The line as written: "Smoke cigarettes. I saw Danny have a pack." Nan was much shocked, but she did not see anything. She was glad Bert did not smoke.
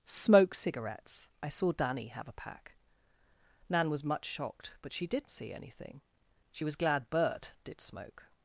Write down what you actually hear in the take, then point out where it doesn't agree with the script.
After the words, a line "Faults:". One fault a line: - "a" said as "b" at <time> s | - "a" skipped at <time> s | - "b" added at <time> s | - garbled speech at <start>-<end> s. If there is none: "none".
"Smoke cigarettes. I saw Danny have a pack." Nan was much shocked, but she did see anything. She was glad Bert did smoke.
Faults:
- "not" skipped at 5.3 s
- "not" skipped at 7.8 s